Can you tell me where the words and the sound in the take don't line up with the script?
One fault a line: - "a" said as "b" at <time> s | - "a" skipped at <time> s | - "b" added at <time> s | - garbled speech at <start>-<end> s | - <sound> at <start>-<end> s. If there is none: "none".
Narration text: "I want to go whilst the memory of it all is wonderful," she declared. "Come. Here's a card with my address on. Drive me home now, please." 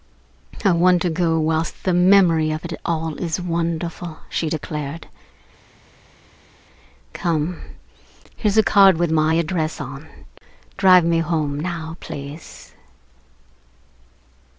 none